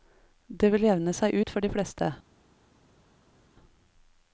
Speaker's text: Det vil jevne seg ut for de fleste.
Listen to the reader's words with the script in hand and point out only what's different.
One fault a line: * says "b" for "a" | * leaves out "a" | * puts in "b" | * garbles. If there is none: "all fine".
all fine